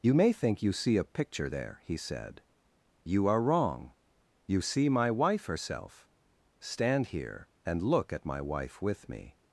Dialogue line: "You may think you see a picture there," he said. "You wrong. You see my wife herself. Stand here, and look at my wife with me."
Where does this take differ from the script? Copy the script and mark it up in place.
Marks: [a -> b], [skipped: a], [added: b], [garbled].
"You may think you see a picture there," he said. "You [added: are] wrong. You see my wife herself. Stand here, and look at my wife with me."